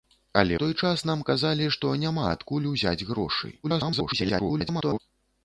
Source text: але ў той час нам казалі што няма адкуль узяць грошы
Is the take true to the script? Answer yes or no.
no